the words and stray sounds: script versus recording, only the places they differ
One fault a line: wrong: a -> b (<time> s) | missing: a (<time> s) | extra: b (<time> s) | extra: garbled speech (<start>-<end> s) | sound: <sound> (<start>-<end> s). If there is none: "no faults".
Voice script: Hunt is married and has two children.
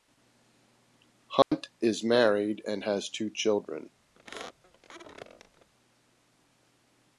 sound: dropout (1.4-1.5 s)
sound: squeak (4.1-5.7 s)